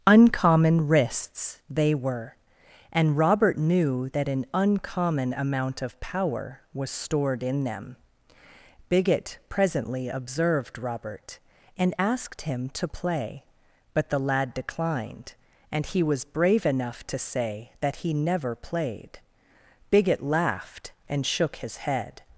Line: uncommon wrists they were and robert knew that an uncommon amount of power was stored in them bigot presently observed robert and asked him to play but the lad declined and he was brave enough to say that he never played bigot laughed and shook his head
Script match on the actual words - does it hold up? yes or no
yes